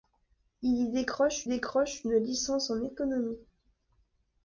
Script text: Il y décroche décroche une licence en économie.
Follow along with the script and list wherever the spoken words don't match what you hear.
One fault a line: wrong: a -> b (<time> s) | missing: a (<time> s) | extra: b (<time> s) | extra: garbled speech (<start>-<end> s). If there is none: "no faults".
no faults